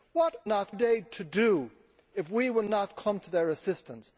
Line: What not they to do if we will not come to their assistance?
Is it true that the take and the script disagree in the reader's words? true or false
false